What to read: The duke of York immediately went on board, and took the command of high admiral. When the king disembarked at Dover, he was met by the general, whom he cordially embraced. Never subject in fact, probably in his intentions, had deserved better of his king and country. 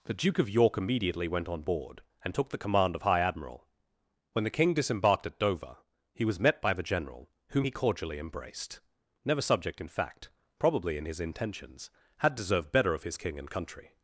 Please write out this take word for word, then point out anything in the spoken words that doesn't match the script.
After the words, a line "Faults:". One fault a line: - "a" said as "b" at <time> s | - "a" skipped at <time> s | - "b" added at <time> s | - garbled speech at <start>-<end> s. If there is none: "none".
The duke of York immediately went on board, and took the command of high admiral. When the king disembarked at Dover, he was met by the general, whom he cordially embraced. Never subject in fact, probably in his intentions, had deserved better of his king and country.
Faults:
none